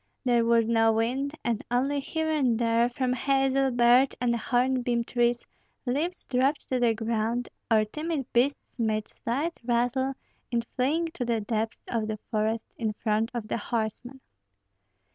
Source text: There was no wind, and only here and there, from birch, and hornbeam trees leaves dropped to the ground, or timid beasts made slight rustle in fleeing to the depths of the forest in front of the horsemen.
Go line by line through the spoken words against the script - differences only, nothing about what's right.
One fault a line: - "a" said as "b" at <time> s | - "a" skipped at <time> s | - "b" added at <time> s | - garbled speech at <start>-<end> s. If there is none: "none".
- "hazel" added at 3.1 s